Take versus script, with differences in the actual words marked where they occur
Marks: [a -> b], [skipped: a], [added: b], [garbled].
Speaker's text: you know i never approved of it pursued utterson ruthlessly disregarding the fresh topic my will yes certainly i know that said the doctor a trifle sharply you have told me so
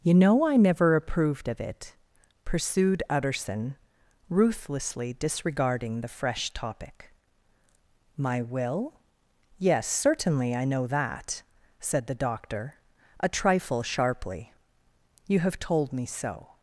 you know i never approved of it pursued utterson ruthlessly disregarding the fresh topic my will yes certainly i know that said the doctor a trifle sharply you have told me so